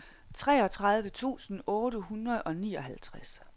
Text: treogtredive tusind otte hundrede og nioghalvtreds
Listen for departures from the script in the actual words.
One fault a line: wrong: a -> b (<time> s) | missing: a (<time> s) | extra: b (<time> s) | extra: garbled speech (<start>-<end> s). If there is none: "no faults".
no faults